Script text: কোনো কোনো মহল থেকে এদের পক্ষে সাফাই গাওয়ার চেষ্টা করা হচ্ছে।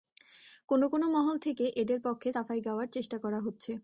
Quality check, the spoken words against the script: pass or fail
pass